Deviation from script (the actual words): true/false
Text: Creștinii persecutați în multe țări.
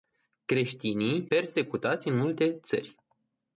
false